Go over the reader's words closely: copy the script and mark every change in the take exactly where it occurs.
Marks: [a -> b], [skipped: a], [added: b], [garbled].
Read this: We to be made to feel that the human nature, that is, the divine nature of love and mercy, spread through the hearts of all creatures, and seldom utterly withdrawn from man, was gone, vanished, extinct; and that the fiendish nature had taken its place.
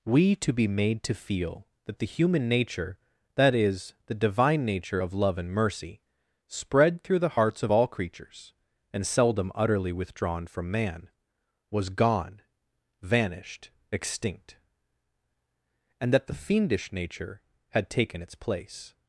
We to be made to feel that the human nature, that is, the divine nature of love and mercy, spread through the hearts of all creatures, and seldom utterly withdrawn from man, was gone, vanished, extinct; and that the fiendish nature had taken its place.